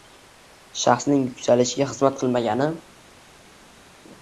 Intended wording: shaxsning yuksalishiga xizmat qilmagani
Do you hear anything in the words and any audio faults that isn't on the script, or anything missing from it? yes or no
no